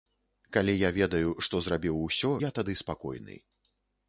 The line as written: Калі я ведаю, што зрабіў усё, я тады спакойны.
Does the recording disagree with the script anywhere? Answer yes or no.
no